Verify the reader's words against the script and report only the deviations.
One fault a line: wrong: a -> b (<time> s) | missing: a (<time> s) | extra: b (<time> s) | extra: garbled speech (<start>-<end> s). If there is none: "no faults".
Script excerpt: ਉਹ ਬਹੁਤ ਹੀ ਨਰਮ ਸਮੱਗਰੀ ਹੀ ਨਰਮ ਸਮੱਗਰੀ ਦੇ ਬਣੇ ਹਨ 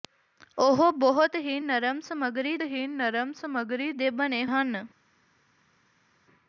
no faults